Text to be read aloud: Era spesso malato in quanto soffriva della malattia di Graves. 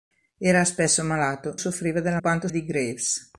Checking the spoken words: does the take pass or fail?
fail